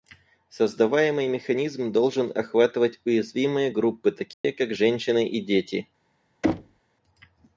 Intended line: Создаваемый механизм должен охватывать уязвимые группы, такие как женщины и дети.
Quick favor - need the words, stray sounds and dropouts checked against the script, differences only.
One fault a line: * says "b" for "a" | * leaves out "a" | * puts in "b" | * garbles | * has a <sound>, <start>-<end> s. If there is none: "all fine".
* has a dropout, 4.3-4.4 s
* has a thud, 6.4-6.8 s